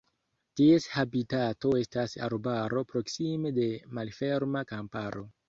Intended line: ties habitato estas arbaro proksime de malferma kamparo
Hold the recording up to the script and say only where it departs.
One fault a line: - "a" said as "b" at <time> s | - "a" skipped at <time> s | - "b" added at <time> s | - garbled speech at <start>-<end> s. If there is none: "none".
none